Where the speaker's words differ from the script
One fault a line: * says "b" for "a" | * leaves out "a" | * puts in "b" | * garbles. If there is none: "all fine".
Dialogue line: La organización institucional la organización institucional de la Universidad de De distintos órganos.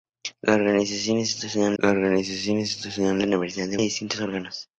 all fine